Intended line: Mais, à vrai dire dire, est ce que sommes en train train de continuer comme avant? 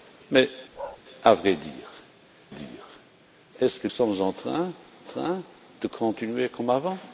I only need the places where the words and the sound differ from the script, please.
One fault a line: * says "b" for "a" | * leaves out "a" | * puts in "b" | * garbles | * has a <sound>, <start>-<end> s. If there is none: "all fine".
* has a bark, 0.7-1.0 s